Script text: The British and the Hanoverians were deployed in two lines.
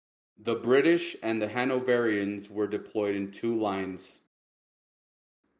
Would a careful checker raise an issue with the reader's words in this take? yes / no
no